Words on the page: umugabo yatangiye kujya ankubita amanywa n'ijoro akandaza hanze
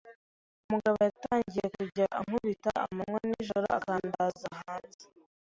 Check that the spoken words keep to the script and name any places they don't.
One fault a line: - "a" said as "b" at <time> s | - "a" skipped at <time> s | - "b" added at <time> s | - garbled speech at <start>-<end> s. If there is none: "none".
none